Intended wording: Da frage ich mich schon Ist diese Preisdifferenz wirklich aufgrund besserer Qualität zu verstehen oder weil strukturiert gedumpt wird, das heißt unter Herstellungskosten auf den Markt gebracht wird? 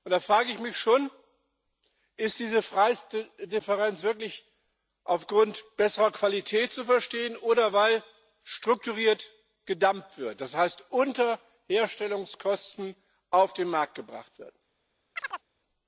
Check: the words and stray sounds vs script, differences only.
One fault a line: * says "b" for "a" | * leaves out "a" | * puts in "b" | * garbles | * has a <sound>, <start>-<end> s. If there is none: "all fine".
* has a chirp, 15.2-15.4 s